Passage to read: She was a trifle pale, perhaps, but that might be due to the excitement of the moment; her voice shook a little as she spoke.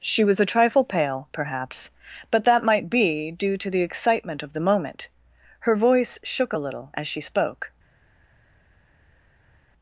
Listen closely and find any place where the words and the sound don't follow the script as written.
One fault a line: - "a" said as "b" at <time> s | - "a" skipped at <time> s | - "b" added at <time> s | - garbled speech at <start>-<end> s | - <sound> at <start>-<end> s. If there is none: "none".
none